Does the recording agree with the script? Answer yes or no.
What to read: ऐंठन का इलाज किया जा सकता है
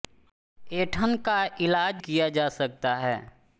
yes